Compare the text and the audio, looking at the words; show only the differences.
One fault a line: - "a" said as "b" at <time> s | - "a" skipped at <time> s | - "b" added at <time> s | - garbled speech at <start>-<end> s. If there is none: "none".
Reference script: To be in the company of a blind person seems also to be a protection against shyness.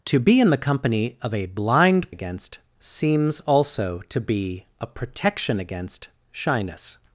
- "person" said as "against" at 2.1 s